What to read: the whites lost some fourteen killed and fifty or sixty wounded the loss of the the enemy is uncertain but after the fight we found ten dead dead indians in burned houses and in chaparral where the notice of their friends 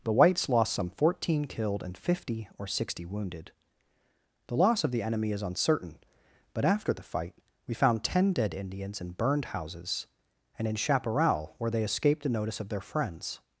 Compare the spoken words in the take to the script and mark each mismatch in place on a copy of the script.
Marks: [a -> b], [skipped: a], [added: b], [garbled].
the whites lost some fourteen killed and fifty or sixty wounded the loss of the [skipped: the] enemy is uncertain but after the fight we found ten dead [skipped: dead] indians in burned houses and in chaparral where [added: they escaped] the notice of their friends